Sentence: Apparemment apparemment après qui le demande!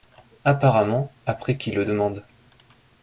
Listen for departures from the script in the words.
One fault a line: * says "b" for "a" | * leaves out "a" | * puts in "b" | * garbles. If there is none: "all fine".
* leaves out "apparemment"